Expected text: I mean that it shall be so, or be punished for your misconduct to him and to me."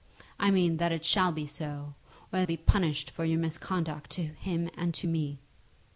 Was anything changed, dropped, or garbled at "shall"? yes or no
no